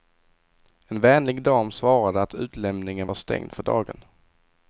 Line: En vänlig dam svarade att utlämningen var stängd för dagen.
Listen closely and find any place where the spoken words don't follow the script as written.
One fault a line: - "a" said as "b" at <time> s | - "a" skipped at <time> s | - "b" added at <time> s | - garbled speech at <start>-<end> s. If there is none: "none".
none